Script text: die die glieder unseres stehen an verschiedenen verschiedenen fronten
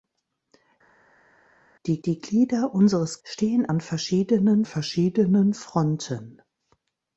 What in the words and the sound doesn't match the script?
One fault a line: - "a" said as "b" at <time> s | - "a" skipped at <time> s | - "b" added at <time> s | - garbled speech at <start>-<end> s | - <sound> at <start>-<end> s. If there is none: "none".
none